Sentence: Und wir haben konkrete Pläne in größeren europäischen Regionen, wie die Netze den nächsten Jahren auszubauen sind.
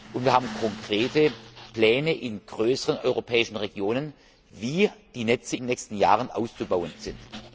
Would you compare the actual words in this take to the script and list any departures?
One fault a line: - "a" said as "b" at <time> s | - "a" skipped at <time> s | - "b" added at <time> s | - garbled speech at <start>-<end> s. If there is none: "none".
none